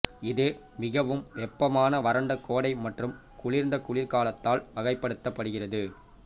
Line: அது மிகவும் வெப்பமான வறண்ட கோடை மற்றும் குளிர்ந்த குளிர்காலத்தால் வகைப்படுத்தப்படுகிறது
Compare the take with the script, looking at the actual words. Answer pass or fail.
fail